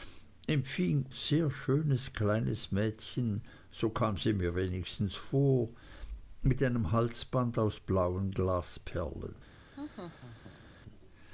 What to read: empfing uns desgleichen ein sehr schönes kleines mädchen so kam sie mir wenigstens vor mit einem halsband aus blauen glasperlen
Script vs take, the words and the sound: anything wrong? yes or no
yes